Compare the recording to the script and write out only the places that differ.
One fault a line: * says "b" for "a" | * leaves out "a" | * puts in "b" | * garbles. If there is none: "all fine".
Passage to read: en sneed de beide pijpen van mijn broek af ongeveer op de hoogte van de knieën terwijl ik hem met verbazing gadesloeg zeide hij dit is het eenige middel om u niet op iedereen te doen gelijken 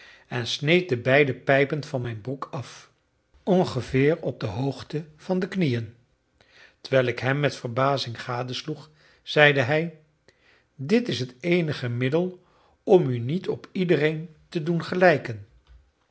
all fine